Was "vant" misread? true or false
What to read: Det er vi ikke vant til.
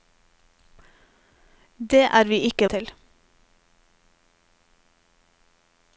true